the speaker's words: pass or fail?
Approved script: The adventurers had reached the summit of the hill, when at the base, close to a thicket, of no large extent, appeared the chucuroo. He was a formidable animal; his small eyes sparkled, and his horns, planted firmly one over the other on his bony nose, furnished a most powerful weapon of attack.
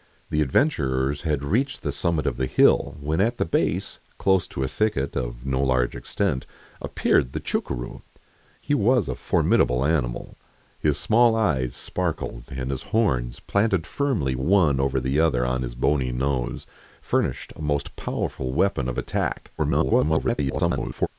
fail